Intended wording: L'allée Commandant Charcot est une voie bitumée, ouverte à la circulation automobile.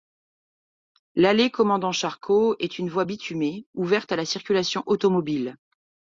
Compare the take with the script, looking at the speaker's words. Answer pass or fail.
pass